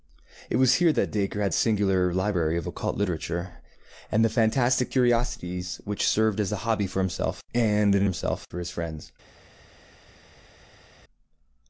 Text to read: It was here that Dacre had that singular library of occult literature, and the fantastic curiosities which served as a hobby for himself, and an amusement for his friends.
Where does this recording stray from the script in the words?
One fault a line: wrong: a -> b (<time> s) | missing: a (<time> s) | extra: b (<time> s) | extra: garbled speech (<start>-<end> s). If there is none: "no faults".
missing: that (1.5 s)
wrong: amusement -> himself (8.0 s)